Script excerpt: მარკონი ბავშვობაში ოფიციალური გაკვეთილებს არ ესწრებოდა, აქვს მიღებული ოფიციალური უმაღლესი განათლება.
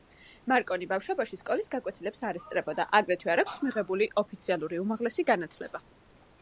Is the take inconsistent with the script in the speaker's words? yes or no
yes